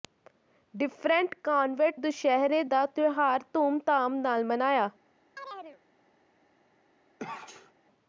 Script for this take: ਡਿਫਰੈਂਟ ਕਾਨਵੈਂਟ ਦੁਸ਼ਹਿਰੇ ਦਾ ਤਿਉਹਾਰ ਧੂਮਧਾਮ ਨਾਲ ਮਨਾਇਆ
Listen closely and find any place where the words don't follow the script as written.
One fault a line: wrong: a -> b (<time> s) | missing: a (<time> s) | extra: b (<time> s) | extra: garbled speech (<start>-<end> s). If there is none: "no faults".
no faults